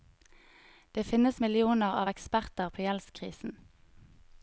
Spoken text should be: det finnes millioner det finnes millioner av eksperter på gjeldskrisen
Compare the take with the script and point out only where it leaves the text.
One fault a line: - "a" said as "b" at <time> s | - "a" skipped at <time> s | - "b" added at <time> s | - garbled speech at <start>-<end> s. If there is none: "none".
- "det finnes millioner" skipped at 1.9 s